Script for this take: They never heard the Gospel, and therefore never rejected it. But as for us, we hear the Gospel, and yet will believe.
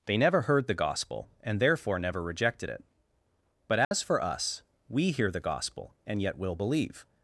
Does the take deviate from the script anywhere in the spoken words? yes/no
no